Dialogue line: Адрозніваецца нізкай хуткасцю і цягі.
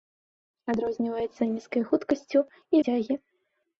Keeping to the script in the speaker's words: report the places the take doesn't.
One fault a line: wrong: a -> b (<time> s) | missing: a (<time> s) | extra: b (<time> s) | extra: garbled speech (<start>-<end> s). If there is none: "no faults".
no faults